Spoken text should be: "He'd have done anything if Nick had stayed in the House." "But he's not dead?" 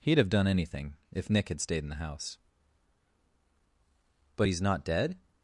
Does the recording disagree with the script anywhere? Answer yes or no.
no